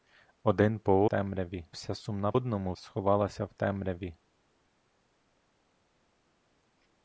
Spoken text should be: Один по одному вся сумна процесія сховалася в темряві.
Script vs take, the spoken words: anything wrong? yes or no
yes